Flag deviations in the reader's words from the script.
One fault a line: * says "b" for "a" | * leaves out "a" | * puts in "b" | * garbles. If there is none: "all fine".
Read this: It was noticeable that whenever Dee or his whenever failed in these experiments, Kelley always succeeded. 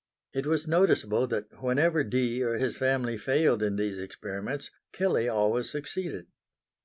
* says "family" for "whenever"